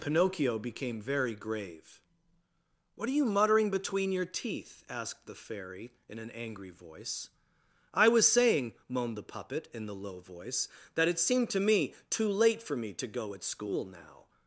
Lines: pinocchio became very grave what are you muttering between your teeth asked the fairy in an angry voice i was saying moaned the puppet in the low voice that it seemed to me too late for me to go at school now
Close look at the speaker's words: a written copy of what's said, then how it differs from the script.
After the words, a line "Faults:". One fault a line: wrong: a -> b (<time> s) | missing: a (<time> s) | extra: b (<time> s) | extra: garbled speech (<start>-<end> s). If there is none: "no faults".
pinocchio became very grave what are you muttering between your teeth asked the fairy in an angry voice i was saying moaned the puppet in the low voice that it seemed to me too late for me to go at school now
Faults:
no faults